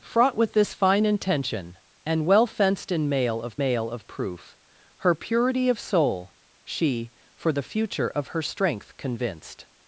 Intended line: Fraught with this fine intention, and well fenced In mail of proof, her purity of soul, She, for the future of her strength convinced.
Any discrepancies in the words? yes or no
yes